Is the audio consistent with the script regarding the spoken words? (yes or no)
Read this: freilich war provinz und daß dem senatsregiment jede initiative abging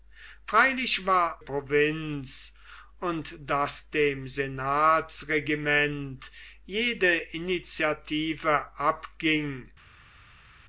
yes